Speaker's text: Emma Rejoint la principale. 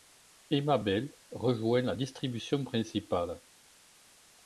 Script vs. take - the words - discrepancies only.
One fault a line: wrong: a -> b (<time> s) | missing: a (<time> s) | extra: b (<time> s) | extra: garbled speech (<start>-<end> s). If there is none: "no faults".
extra: Bell (0.8 s)
extra: distribution (1.9 s)